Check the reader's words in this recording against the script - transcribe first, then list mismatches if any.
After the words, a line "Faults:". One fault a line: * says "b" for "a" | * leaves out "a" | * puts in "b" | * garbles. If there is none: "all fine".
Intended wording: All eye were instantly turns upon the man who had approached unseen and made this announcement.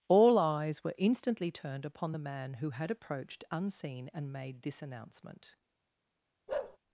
All eyes were instantly turned upon the man who had approached unseen and made this announcement.
Faults:
* says "eyes" for "eye"
* says "turned" for "turns"